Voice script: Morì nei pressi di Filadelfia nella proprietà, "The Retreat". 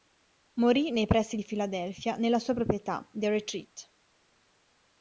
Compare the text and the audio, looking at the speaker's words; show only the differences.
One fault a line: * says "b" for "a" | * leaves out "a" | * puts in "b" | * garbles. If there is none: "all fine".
* puts in "sua"